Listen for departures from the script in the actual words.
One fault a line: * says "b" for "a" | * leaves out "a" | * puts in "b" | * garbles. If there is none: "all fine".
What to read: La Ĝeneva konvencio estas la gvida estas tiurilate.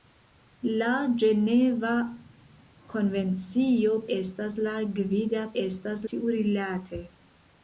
all fine